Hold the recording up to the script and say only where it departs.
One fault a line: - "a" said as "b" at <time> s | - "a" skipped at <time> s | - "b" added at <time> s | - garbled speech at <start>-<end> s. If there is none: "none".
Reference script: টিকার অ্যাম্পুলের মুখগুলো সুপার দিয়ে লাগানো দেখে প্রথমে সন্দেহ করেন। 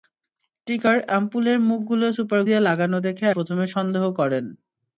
none